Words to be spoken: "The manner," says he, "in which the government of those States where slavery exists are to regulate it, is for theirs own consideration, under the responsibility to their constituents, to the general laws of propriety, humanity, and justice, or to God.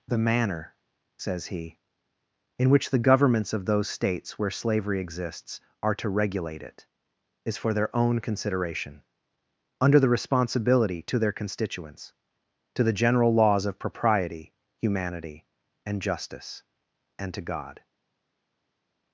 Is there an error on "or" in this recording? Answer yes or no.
yes